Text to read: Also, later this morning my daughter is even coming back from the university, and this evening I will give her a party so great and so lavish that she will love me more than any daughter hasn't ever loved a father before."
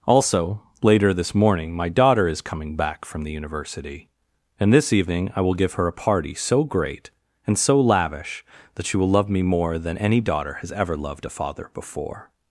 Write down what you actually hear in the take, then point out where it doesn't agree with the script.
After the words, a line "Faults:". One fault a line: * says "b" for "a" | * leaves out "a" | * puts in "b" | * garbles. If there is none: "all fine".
Also, later this morning my daughter is coming back from the university, and this evening I will give her a party so great and so lavish that she will love me more than any daughter has ever loved a father before."
Faults:
* leaves out "even"
* says "has" for "hasn't"